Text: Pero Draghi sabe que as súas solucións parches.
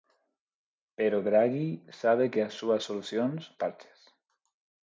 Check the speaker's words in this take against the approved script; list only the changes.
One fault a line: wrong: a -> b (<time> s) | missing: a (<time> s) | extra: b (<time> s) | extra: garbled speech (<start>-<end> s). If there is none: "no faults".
no faults